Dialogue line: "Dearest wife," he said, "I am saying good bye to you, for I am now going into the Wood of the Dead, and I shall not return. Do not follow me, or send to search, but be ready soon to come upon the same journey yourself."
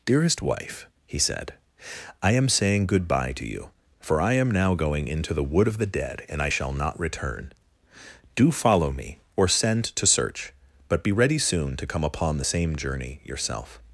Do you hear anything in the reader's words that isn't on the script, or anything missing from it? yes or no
yes